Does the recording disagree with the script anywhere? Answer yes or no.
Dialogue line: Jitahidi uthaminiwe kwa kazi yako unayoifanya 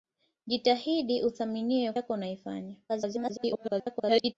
yes